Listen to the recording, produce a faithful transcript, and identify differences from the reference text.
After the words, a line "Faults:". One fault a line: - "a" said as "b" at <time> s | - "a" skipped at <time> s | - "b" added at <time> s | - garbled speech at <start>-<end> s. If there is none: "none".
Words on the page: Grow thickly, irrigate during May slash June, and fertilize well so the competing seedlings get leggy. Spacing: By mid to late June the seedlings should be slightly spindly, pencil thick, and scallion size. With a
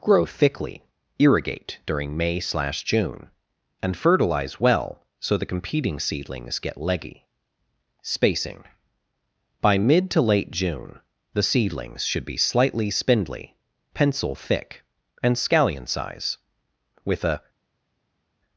Grow thickly, irrigate during May slash June, and fertilize well so the competing seedlings get leggy. Spacing: By mid to late June the seedlings should be slightly spindly, pencil thick, and scallion size. With a
Faults:
none